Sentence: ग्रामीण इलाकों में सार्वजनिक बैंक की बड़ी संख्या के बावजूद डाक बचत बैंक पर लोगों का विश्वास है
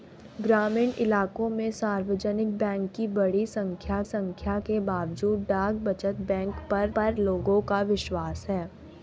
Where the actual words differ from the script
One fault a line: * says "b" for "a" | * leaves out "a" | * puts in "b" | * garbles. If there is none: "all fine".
* puts in "संख्या"
* puts in "पर"